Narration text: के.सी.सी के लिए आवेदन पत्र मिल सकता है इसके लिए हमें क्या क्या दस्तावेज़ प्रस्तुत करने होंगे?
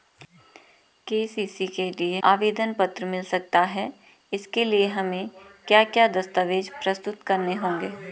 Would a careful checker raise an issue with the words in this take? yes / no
no